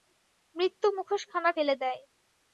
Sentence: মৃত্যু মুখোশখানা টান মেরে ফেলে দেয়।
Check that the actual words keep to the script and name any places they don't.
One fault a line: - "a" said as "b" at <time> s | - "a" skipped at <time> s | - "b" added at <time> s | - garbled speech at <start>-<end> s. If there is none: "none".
- "টান মেরে" skipped at 1.5 s